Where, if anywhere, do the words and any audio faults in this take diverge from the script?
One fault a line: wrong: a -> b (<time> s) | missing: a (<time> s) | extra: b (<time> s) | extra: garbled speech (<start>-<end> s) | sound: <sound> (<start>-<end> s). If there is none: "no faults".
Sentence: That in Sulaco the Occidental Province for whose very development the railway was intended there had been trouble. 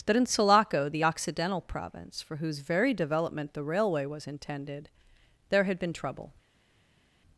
no faults